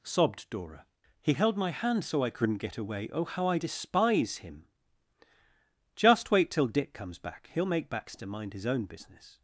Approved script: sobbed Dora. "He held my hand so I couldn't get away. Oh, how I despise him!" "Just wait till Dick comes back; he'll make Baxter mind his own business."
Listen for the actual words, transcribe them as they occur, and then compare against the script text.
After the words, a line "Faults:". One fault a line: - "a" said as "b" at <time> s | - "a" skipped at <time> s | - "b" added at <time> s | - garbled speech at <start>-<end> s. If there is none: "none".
sobbed Dora. "He held my hand so I couldn't get away. Oh, how I despise him!" "Just wait till Dick comes back; he'll make Baxter mind his own business."
Faults:
none